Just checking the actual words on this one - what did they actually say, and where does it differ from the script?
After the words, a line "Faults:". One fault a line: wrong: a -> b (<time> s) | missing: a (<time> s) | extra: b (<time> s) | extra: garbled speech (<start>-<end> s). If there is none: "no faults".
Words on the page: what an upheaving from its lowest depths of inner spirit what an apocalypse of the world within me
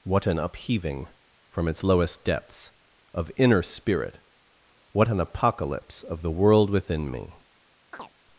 what an upheaving from its lowest depths of inner spirit what an apocalypse of the world within me
Faults:
no faults